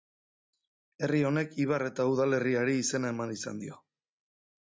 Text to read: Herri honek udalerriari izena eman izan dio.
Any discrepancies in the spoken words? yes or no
yes